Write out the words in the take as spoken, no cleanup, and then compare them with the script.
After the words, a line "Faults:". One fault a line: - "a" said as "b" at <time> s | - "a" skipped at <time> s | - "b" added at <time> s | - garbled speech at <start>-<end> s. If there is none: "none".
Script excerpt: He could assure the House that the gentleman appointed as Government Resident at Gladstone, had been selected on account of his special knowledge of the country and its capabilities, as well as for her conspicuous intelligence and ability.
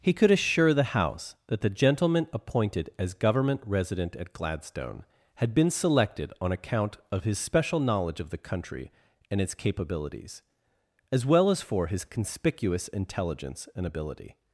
He could assure the House that the gentleman appointed as Government Resident at Gladstone, had been selected on account of his special knowledge of the country and its capabilities, as well as for his conspicuous intelligence and ability.
Faults:
- "her" said as "his" at 11.9 s